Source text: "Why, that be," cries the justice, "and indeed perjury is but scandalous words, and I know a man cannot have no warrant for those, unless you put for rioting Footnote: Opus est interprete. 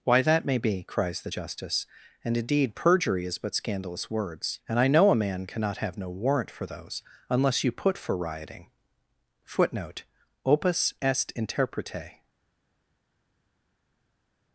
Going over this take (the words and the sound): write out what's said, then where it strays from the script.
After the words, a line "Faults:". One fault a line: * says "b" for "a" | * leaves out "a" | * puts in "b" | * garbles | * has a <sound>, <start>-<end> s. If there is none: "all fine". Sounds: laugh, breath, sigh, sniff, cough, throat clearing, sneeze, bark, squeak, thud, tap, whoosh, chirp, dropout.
"Why, that may be," cries the justice, "and indeed perjury is but scandalous words, and I know a man cannot have no warrant for those, unless you put for rioting Footnote: Opus est interprete.
Faults:
* puts in "may"